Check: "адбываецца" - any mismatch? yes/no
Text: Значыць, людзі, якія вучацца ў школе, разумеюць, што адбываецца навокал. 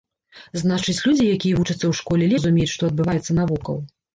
no